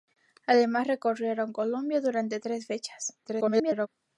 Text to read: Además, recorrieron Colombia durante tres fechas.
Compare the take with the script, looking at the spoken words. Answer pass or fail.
fail